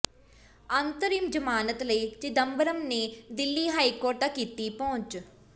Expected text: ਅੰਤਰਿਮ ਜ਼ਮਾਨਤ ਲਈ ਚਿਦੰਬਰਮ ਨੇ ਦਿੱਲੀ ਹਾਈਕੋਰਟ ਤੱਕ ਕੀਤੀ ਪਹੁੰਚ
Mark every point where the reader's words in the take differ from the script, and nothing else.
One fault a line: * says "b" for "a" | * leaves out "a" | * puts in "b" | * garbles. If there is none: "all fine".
all fine